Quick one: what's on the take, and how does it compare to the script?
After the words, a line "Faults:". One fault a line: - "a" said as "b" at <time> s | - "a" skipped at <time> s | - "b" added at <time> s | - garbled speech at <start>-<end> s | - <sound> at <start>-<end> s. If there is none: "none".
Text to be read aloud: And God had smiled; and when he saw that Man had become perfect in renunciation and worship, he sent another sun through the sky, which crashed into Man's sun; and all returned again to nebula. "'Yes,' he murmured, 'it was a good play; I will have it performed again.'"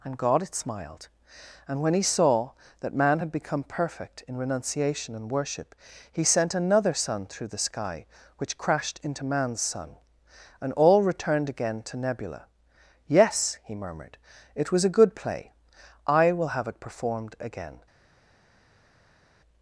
And God had smiled; and when he saw that Man had become perfect in renunciation and worship, he sent another sun through the sky, which crashed into Man's sun; and all returned again to nebula. "'Yes,' he murmured, 'it was a good play; I will have it performed again.'"
Faults:
none